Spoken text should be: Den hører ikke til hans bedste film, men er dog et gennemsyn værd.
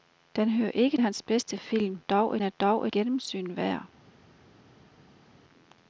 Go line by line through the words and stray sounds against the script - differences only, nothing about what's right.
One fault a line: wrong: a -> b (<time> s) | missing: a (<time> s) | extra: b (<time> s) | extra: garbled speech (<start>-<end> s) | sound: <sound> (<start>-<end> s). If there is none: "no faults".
missing: til (1.0 s)
wrong: men -> dog (2.0 s)
missing: et (2.9 s)